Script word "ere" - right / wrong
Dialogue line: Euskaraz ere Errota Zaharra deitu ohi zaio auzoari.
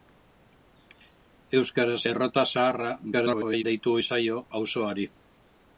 wrong